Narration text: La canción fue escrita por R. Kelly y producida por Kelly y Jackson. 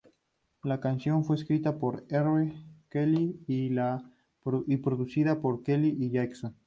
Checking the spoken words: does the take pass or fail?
pass